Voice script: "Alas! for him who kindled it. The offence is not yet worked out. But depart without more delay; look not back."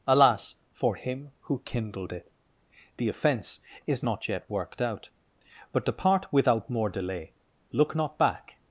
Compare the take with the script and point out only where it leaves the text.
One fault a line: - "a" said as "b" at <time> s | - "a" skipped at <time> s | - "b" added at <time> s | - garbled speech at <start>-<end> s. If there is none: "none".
none